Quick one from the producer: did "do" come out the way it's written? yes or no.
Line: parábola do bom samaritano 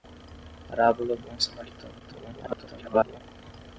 no